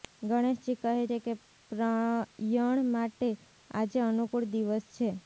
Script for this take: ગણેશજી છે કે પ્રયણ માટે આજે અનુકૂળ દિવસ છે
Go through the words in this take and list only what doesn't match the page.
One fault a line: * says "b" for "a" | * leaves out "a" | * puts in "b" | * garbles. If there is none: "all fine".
* puts in "કહે"